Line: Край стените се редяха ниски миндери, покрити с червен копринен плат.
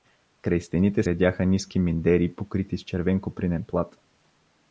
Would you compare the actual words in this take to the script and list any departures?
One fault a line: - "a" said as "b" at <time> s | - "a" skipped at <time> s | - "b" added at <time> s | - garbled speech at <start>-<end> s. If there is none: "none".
- "се" skipped at 1.0 s